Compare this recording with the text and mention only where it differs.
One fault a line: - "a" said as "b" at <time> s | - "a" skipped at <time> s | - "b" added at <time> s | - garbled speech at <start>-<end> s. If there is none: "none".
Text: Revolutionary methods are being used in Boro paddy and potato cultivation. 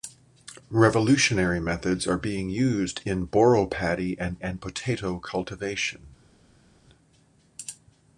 - "and" added at 4.4 s